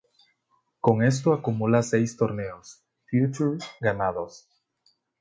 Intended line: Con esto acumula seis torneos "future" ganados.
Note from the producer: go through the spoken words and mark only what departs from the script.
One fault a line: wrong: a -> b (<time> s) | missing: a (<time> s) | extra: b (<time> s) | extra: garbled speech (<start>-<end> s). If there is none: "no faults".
no faults